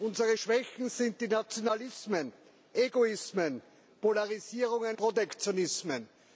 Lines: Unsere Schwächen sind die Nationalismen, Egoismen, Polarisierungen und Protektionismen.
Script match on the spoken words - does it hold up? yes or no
no